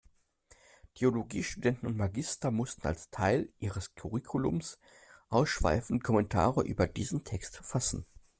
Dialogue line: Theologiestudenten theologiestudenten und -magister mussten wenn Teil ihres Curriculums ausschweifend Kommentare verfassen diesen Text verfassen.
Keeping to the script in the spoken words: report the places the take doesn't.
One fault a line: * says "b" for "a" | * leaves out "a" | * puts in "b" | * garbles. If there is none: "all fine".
* leaves out "theologiestudenten"
* says "als" for "wenn"
* says "über" for "verfassen"